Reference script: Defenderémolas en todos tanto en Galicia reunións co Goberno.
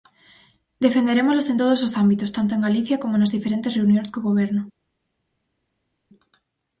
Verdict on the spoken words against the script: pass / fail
fail